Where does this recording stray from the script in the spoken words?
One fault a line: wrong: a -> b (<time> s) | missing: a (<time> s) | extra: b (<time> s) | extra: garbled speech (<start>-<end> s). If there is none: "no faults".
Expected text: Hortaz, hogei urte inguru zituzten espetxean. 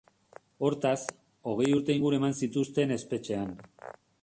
extra: eman (2.2 s)